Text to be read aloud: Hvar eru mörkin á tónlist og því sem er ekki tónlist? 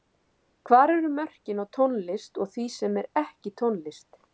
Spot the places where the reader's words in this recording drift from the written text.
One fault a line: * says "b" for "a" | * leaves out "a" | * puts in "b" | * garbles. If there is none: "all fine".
all fine